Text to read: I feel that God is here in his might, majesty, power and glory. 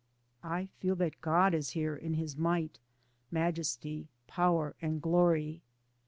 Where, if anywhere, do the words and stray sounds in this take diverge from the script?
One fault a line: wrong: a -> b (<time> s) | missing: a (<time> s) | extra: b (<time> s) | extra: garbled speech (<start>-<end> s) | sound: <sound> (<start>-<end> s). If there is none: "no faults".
no faults